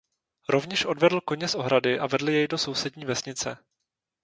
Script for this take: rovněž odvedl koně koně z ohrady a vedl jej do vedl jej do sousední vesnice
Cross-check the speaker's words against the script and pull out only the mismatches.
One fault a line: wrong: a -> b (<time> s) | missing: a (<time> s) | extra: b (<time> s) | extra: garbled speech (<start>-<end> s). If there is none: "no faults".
missing: koně (1.5 s)
missing: vedl jej do (2.6 s)